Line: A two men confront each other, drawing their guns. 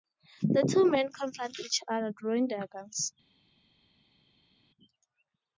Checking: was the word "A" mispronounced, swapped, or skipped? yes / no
yes